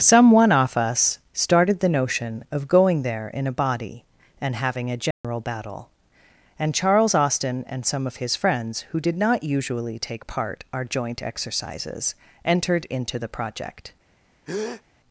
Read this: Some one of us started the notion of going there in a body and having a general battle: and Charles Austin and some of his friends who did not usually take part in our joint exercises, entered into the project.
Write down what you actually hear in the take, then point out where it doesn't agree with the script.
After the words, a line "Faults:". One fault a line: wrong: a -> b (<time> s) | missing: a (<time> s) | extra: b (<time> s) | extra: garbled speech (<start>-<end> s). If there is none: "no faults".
Some one off us started the notion of going there in a body and having a general battle: and Charles Austin and some of his friends who did not usually take part our joint exercises, entered into the project.
Faults:
wrong: of -> off (0.5 s)
missing: in (10.6 s)